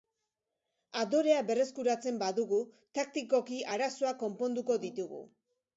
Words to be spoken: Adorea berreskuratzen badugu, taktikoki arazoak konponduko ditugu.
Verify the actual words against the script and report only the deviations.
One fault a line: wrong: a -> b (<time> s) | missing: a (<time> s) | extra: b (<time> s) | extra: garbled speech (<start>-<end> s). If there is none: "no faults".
no faults